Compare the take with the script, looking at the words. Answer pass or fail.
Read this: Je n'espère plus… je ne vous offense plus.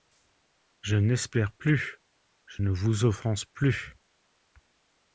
pass